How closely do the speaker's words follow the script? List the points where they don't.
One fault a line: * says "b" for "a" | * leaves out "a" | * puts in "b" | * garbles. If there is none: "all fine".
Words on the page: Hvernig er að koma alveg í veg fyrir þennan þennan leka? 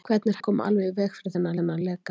all fine